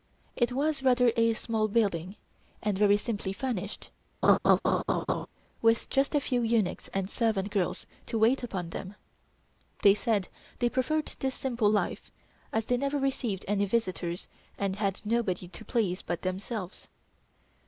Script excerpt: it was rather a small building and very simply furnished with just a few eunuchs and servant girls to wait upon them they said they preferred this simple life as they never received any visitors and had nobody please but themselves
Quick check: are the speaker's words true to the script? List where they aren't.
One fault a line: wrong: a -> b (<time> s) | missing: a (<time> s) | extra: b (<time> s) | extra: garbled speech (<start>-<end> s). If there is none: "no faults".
extra: to (15.5 s)